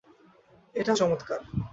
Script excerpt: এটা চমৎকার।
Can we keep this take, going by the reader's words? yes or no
yes